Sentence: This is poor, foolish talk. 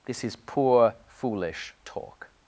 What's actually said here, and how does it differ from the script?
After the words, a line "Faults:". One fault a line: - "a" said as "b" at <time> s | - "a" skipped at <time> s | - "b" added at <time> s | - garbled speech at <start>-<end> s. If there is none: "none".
This is poor, foolish talk.
Faults:
none